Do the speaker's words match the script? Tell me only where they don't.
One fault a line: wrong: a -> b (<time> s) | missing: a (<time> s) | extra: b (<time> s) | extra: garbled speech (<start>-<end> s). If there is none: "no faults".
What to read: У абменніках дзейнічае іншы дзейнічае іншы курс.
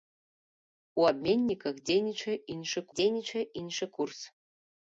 no faults